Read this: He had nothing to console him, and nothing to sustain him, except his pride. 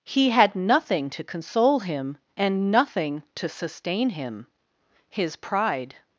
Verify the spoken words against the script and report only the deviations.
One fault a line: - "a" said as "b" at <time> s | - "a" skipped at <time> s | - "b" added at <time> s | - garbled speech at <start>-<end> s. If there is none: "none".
- "except" skipped at 4.5 s